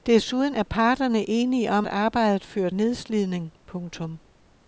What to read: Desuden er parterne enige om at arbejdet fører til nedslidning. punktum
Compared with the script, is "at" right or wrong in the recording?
wrong